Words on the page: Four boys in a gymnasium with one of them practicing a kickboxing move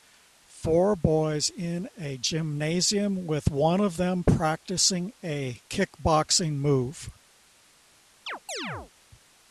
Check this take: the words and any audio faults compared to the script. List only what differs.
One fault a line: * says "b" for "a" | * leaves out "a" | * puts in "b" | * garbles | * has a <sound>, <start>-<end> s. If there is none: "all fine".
* has a chirp, 8.3-8.9 s